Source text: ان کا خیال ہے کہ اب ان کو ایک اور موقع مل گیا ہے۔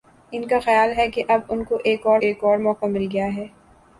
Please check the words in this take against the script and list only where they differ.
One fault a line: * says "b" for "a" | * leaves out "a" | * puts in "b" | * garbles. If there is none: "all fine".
* puts in "ایک اور"